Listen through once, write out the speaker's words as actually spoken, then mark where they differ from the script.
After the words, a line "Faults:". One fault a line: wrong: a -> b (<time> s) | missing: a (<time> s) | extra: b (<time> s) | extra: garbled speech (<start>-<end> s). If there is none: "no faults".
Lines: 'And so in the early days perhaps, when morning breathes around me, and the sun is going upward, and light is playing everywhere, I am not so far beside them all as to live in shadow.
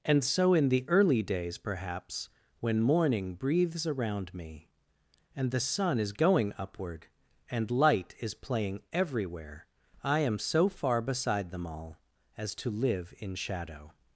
'And so in the early days perhaps, when morning breathes around me, and the sun is going upward, and light is playing everywhere, I am so far beside them all as to live in shadow.
Faults:
missing: not (10.4 s)